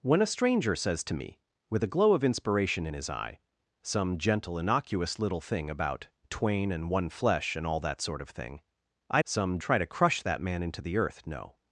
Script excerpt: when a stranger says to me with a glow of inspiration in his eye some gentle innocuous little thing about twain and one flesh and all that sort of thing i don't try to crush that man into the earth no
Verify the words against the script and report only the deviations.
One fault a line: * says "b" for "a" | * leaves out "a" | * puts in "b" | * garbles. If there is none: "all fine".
* says "some" for "don't"